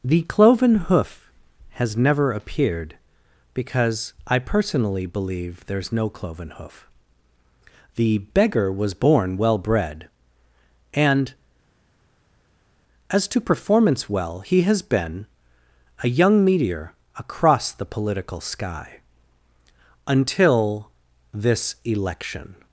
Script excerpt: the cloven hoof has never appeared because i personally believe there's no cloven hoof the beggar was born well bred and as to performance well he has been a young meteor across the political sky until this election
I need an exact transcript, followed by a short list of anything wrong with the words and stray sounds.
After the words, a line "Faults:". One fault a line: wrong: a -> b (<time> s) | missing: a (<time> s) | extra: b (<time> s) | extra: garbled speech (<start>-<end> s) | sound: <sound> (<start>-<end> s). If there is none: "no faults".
the cloven hoof has never appeared because i personally believe there's no cloven hoof the beggar was born well bred and as to performance well he has been a young meteor across the political sky until this election
Faults:
no faults